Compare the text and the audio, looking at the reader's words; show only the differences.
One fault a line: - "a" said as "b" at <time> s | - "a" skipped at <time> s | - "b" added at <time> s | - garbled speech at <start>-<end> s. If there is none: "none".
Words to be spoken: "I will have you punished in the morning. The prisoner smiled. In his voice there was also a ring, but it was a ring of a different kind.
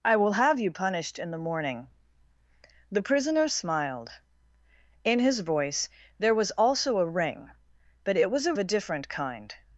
- "ring of" skipped at 8.6 s